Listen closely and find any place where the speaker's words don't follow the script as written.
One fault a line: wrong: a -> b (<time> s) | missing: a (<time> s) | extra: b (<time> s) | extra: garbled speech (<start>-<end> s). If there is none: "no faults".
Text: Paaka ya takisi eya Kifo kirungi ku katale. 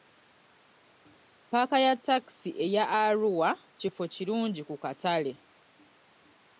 extra: Arua (3.0 s)